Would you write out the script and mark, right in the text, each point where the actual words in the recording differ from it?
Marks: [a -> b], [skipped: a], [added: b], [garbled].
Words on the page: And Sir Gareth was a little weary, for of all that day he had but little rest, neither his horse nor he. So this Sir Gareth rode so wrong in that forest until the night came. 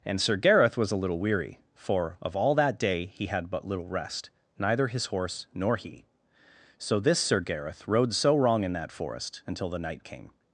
And Sir Gareth was a little weary, for of all that day he had but little rest, neither his horse nor he. So this Sir Gareth rode so wrong in that forest until the night came.